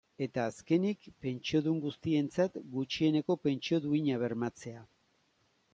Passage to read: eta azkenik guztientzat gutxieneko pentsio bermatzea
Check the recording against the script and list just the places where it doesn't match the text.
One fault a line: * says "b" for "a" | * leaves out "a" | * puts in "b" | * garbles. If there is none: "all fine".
* puts in "pentsiodun"
* puts in "duina"